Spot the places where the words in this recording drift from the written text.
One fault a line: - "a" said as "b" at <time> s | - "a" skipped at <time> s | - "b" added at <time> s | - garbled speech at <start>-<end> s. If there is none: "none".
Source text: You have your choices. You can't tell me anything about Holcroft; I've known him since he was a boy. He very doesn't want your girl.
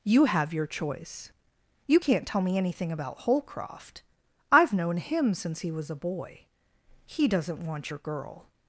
- "choices" said as "choice" at 0.7 s
- "very" skipped at 7.3 s